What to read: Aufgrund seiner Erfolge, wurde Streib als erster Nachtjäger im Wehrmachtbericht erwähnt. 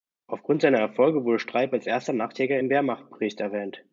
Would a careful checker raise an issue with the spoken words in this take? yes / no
no